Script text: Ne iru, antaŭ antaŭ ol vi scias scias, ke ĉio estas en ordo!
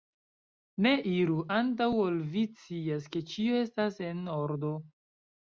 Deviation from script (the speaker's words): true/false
true